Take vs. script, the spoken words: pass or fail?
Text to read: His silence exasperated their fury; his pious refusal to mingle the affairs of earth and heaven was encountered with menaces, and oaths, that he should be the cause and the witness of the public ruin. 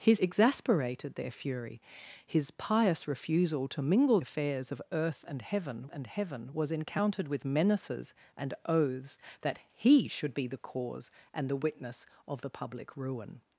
fail